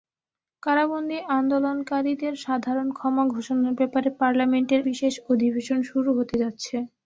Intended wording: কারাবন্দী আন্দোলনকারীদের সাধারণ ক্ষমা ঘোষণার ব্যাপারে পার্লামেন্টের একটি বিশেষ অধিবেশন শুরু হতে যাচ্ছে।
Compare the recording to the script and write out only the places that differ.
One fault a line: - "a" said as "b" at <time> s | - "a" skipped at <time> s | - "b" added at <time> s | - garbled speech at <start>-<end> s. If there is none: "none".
- "একটি" skipped at 4.8 s